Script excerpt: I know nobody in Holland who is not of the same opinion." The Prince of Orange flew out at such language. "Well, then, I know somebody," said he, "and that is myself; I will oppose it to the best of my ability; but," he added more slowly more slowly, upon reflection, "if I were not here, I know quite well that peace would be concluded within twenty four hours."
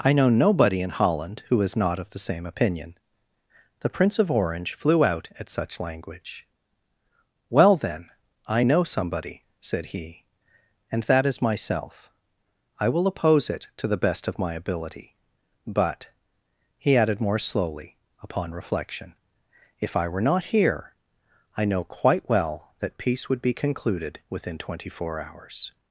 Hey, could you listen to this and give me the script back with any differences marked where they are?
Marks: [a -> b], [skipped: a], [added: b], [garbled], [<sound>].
I know nobody in Holland who is not of the same opinion." The Prince of Orange flew out at such language. "Well, then, I know somebody," said he, "and that is myself; I will oppose it to the best of my ability; but," he added more slowly [skipped: more slowly,] upon reflection, "if I were not here, I know quite well that peace would be concluded within twenty four hours."